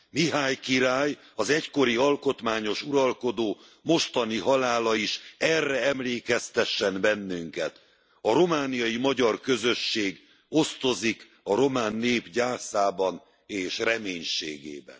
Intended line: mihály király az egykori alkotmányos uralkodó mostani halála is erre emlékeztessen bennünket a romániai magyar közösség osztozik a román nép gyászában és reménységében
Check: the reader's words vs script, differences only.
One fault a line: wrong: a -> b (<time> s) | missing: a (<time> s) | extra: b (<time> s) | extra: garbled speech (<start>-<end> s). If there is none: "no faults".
no faults